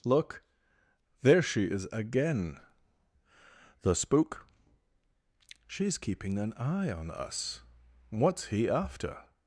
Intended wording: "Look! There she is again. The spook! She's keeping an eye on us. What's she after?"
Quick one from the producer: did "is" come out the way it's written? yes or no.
yes